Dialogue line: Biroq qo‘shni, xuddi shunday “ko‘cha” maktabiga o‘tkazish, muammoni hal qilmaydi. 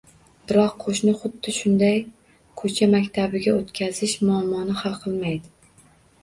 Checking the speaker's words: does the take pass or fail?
pass